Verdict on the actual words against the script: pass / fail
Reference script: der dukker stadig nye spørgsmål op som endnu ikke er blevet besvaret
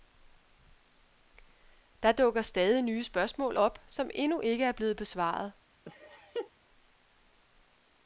pass